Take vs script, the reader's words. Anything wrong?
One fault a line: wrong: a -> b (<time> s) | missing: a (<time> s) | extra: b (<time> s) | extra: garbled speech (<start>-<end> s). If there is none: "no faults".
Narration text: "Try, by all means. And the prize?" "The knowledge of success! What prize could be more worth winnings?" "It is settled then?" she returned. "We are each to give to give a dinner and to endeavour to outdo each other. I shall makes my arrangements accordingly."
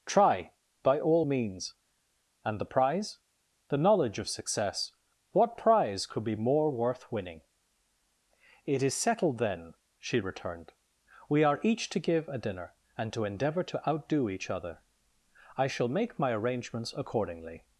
wrong: winnings -> winning (7.1 s)
missing: to give (12.3 s)
wrong: makes -> make (15.9 s)